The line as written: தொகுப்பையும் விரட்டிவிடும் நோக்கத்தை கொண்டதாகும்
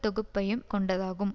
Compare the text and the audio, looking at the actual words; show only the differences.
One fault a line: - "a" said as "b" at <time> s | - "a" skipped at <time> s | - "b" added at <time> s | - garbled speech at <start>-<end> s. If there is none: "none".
- "விரட்டிவிடும் நோக்கத்தை" skipped at 0.6 s